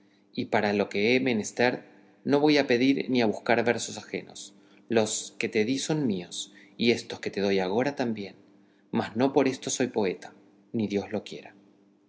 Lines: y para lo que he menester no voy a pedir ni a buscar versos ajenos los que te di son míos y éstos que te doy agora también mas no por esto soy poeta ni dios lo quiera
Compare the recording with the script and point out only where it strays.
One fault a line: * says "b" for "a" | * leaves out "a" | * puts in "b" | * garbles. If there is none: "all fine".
all fine